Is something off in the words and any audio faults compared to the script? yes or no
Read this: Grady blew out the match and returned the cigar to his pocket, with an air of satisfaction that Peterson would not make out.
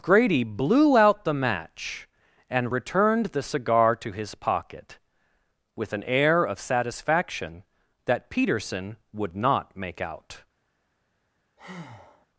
yes